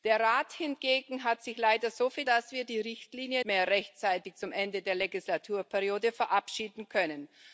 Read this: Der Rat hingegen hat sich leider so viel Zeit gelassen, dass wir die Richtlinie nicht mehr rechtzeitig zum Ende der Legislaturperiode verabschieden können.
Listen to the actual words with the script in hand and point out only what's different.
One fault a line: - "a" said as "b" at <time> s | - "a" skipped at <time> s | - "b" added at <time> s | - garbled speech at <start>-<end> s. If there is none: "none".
- "Zeit gelassen" skipped at 2.3 s
- "nicht" skipped at 3.4 s